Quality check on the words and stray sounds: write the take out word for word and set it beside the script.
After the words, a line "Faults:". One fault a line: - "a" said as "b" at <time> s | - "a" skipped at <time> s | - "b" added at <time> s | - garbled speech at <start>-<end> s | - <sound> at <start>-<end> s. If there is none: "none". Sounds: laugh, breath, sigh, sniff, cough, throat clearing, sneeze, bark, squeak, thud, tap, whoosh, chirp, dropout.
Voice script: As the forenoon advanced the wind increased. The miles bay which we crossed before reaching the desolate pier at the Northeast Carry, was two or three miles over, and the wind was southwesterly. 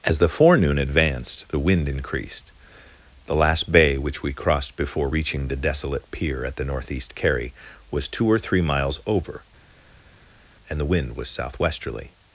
As the forenoon advanced the wind increased. The last bay which we crossed before reaching the desolate pier at the Northeast Carry, was two or three miles over, and the wind was southwesterly.
Faults:
- "miles" said as "last" at 3.4 s